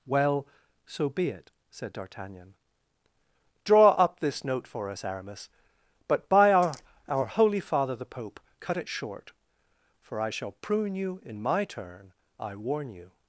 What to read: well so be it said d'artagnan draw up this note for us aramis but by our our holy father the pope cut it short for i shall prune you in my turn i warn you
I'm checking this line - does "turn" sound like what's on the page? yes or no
yes